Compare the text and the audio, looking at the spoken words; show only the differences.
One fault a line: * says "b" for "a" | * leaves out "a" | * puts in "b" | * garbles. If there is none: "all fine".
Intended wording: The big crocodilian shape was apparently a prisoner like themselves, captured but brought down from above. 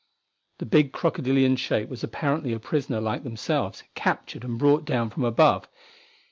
* says "and" for "but"